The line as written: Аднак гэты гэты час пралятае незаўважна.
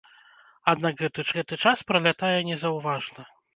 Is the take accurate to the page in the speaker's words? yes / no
yes